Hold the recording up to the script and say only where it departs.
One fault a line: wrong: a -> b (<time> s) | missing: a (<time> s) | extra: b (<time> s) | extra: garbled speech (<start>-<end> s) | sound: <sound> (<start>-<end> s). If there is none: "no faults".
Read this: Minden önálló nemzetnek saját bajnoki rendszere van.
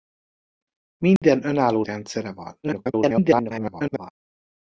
sound: dropout (1.2-1.2 s)
missing: nemzetnek saját bajnoki (1.9 s)
extra: garbled speech (2.6-4.1 s)